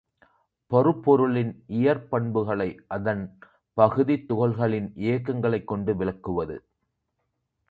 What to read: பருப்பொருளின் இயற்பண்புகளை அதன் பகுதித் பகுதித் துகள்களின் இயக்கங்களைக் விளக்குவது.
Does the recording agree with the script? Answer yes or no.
no